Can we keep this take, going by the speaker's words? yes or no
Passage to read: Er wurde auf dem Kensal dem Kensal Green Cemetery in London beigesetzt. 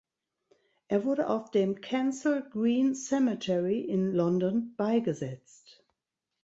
no